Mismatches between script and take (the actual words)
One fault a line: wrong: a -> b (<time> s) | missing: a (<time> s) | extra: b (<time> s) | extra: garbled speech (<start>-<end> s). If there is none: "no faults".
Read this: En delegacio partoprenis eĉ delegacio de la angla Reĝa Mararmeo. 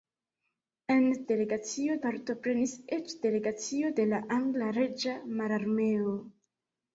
no faults